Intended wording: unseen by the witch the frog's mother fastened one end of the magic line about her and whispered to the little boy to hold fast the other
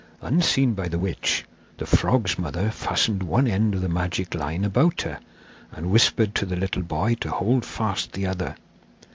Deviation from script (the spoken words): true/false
false